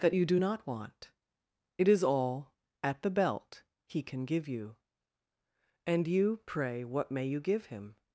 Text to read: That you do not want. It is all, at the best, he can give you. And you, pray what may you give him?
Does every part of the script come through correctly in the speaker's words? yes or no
no